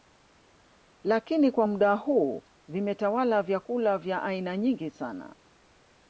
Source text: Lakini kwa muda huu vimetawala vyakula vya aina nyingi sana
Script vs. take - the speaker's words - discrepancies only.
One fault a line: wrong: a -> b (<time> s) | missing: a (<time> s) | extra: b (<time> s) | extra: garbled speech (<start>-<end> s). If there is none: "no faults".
no faults